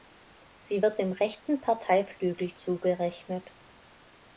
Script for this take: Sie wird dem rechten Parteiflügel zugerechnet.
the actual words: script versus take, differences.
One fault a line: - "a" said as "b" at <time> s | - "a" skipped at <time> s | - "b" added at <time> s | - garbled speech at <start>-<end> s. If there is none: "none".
none